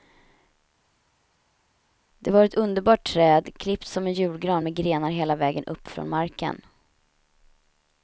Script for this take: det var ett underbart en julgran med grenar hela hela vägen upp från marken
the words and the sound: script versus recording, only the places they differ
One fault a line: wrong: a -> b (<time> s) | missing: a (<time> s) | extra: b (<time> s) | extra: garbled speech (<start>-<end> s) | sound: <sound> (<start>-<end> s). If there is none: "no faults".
extra: träd klippt som (3.1 s)
missing: hela (5.3 s)